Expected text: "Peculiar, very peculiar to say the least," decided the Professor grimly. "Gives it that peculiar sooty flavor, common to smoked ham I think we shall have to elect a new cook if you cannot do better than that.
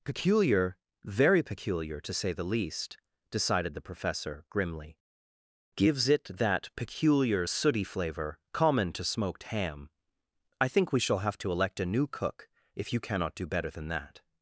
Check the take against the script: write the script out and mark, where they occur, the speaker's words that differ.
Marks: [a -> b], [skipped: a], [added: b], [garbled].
"Peculiar, very peculiar to say the least," decided the Professor grimly. "Gives it that peculiar sooty flavor, common to smoked ham I think we shall have to elect a new cook if you cannot do better than that.